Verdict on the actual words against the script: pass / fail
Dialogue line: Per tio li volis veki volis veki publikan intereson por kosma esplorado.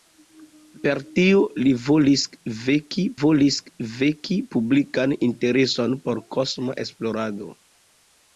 pass